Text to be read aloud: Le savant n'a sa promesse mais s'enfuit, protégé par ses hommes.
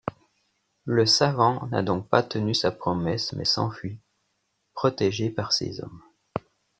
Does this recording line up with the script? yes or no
no